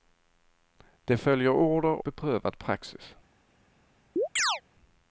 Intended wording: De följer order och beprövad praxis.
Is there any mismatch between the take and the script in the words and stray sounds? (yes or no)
yes